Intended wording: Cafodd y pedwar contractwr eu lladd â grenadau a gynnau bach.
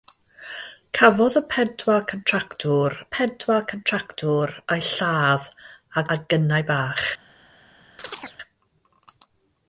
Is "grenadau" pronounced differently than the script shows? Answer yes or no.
yes